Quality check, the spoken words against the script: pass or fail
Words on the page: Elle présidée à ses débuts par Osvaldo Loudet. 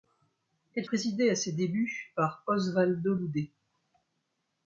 pass